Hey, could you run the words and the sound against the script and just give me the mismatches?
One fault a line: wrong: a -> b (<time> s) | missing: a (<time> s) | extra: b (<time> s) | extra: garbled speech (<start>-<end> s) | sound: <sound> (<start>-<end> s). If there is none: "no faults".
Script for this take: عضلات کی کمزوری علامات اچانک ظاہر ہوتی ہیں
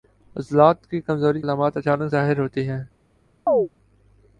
sound: chirp (3.5-3.7 s)